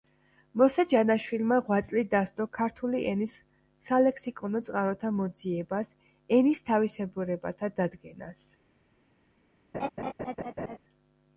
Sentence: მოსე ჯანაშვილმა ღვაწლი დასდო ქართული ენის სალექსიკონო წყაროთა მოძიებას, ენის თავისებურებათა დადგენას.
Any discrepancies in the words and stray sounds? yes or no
yes